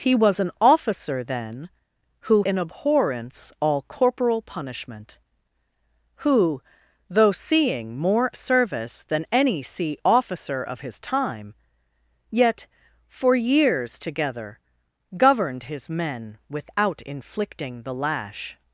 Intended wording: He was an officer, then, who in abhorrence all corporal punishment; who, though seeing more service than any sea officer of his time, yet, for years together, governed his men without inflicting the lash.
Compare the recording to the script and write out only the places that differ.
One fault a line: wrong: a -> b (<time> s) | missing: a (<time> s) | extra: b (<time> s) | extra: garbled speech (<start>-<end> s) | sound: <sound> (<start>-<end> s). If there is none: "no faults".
no faults